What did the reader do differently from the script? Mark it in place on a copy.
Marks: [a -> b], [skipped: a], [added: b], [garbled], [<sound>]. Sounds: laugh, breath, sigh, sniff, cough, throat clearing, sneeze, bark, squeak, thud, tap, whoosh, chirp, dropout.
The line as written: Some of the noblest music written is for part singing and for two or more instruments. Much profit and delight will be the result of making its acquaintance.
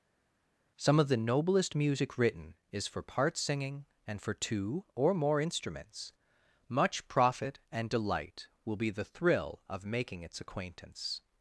Some of the noblest music written is for part singing and for two or more instruments. Much profit and delight will be the [result -> thrill] of making its acquaintance.